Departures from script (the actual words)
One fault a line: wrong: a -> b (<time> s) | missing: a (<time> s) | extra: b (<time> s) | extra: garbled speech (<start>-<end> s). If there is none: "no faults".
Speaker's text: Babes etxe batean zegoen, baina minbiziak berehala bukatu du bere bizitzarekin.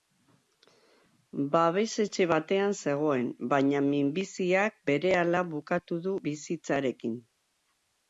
missing: bere (6.2 s)